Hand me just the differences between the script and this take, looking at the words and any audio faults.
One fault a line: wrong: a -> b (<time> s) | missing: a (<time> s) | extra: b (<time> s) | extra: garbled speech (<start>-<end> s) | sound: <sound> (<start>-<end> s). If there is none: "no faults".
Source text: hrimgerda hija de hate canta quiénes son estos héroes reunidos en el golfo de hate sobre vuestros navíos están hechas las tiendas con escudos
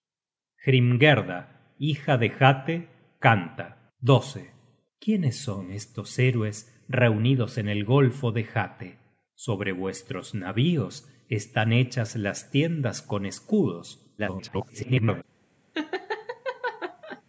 extra: garbled speech (14.2-15.2 s)
sound: laugh (15.7-17.2 s)